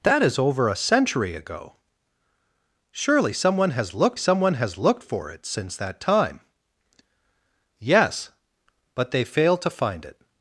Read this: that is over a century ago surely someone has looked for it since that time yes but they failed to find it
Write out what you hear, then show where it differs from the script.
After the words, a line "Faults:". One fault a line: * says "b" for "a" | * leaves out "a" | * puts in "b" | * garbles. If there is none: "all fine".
that is over a century ago surely someone has looked someone has looked for it since that time yes but they failed to find it
Faults:
* puts in "someone has looked"